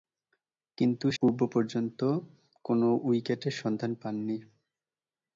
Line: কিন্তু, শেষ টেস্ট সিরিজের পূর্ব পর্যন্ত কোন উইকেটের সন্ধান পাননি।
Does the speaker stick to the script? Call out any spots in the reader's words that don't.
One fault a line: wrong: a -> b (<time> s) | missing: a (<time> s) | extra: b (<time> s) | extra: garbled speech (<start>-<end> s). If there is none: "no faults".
missing: শেষ টেস্ট সিরিজের (1.1 s)